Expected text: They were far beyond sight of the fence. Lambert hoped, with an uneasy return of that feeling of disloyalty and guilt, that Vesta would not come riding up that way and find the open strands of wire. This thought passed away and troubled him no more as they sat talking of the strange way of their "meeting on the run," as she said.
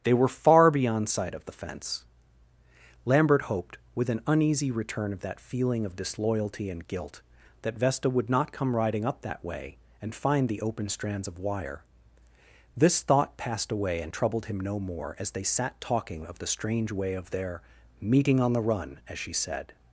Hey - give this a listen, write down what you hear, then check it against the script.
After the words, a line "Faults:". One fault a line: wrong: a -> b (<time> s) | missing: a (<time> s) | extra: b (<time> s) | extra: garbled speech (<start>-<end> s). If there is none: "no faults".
They were far beyond sight of the fence. Lambert hoped, with an uneasy return of that feeling of disloyalty and guilt, that Vesta would not come riding up that way and find the open strands of wire. This thought passed away and troubled him no more as they sat talking of the strange way of their "meeting on the run," as she said.
Faults:
no faults